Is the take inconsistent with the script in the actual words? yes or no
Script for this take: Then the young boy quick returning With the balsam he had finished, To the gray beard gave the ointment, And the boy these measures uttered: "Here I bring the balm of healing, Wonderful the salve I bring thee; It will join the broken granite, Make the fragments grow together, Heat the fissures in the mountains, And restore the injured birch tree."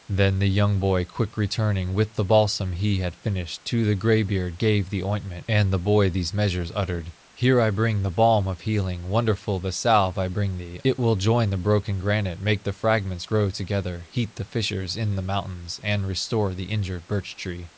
no